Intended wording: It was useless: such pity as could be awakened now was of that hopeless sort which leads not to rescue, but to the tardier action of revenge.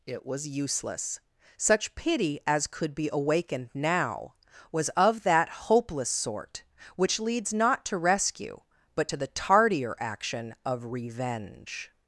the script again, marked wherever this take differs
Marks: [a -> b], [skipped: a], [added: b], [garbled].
It was useless: such pity as could be awakened now was of that hopeless sort which leads not to rescue, but to the tardier action of revenge.